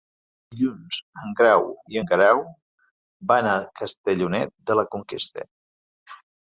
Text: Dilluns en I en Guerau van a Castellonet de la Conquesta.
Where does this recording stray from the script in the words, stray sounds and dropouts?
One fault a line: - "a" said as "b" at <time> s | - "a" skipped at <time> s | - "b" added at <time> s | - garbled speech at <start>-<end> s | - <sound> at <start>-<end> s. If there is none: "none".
- "Grau" added at 1.4 s